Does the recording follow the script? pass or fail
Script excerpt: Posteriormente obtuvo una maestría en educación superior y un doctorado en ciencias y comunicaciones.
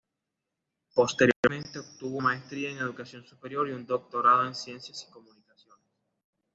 fail